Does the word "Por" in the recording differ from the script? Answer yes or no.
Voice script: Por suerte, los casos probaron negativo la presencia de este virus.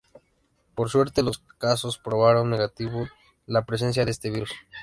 no